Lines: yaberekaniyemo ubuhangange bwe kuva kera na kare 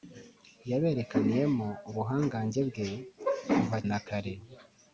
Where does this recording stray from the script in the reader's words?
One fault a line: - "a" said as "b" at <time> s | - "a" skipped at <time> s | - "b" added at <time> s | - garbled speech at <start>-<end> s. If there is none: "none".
- "kera" skipped at 3.8 s